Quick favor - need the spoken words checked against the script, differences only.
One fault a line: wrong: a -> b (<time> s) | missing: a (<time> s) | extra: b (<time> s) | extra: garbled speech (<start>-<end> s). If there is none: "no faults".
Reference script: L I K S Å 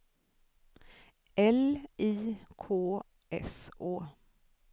no faults